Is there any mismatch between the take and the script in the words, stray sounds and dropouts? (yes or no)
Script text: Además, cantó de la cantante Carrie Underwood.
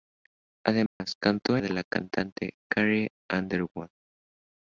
yes